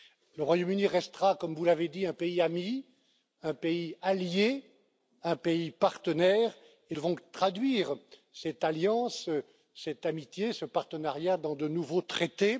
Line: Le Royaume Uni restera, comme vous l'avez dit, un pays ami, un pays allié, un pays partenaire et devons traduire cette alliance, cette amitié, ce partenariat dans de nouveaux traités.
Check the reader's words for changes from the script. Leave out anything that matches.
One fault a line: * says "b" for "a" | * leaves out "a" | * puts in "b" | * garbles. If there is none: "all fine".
all fine